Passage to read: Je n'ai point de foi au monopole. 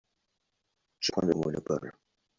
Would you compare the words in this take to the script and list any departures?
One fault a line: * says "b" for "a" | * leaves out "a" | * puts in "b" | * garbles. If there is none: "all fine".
* leaves out "n'ai"
* leaves out "foi"